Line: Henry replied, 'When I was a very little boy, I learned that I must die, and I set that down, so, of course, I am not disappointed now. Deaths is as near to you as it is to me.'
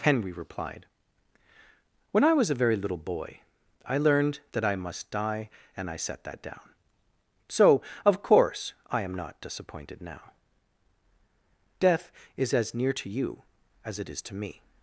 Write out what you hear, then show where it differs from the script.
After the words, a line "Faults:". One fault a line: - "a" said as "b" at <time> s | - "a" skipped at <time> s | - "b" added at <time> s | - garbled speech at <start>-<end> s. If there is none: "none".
Henry replied, 'When I was a very little boy, I learned that I must die, and I set that down, so, of course, I am not disappointed now. Death is as near to you as it is to me.'
Faults:
- "Deaths" said as "Death" at 11.8 s